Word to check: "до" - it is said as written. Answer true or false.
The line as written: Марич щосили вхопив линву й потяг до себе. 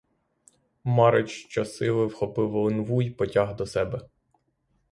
true